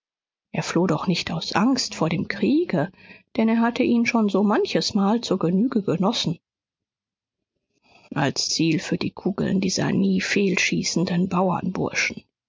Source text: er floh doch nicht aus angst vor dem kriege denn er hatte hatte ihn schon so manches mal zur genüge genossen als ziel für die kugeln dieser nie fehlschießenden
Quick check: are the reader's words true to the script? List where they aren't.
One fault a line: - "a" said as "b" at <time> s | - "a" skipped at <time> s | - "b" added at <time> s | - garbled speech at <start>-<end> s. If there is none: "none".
- "hatte" skipped at 3.8 s